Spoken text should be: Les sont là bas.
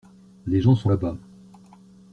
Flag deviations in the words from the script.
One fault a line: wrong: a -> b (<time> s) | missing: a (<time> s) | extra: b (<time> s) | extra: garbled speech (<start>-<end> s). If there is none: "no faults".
extra: gens (0.6 s)